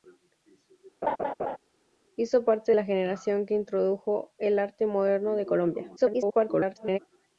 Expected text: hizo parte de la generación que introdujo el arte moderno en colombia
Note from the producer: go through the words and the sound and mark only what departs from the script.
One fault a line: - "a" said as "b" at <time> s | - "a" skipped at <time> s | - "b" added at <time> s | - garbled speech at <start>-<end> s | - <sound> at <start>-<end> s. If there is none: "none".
- laugh at 1.0-1.6 s
- "de" skipped at 2.7 s
- garbled speech at 6.0-7.0 s